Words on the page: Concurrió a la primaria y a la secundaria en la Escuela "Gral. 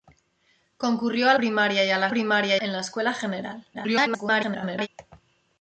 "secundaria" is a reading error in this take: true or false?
true